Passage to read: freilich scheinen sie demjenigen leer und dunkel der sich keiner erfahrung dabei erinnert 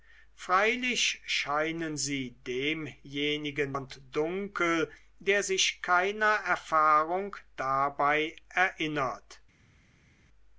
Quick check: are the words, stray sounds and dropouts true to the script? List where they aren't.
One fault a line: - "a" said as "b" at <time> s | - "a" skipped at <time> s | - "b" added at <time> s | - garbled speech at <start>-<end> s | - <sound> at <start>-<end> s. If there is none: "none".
- "leer" skipped at 3.8 s